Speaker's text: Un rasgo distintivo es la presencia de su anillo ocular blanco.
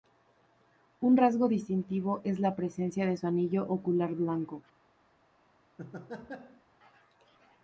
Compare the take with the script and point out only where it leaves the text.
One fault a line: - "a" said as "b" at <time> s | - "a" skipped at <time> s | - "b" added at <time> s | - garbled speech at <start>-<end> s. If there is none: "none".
none